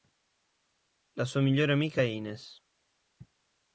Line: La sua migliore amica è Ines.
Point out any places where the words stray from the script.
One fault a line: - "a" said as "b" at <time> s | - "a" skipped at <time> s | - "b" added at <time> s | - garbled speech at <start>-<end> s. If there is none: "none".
none